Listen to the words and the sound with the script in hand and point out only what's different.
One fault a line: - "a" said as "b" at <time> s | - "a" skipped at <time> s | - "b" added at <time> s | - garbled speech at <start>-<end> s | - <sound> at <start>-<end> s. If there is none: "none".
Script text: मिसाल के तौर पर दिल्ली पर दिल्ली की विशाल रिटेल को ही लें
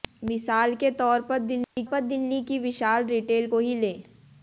- dropout at 1.6-1.8 s